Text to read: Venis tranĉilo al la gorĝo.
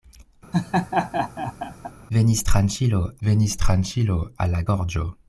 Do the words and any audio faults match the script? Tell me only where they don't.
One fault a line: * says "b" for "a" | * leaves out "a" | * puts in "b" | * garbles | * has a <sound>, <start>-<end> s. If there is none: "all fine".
* has a laugh, 0.5-1.9 s
* puts in "venis tranĉilo"